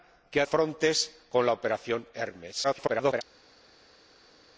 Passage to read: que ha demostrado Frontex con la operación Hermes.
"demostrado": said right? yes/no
no